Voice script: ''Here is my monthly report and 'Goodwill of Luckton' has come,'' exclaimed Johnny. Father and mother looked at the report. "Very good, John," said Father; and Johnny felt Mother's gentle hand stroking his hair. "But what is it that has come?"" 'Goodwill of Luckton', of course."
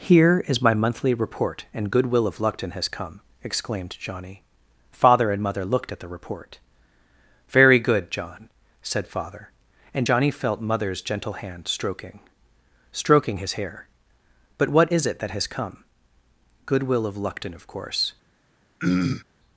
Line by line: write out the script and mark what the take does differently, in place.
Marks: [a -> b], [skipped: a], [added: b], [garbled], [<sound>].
''Here is my monthly report and 'Goodwill of Luckton' has come,'' exclaimed Johnny. Father and mother looked at the report. "Very good, John," said Father; and Johnny felt Mother's gentle hand stroking [added: stroking] his hair. "But what is it that has come?"" 'Goodwill of Luckton', of course." [throat clearing]